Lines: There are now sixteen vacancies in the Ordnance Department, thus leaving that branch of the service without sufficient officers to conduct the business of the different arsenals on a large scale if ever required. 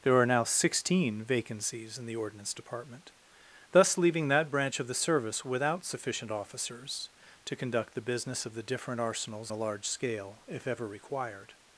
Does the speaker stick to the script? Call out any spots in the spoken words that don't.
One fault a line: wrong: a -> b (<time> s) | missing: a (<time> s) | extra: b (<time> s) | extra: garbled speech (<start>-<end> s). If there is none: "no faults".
missing: on (9.5 s)